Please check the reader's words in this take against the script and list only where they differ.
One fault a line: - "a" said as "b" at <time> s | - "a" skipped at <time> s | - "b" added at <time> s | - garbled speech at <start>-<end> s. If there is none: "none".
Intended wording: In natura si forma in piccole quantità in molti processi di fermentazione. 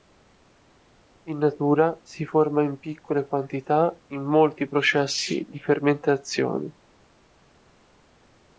none